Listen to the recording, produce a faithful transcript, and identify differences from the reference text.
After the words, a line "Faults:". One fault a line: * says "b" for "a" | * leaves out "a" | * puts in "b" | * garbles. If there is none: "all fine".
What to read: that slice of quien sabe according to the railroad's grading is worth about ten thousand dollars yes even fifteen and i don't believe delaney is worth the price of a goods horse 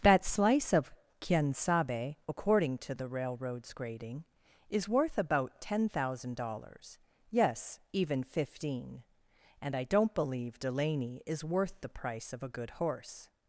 that slice of quien sabe according to the railroad's grading is worth about ten thousand dollars yes even fifteen and i don't believe delaney is worth the price of a good horse
Faults:
* says "good" for "goods"